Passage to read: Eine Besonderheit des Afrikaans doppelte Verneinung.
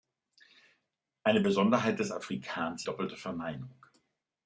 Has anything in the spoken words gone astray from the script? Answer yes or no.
no